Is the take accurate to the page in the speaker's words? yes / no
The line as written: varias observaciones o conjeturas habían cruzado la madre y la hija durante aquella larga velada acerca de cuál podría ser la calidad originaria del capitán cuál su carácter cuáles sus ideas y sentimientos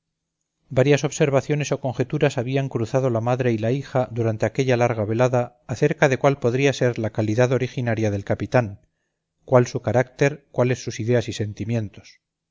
yes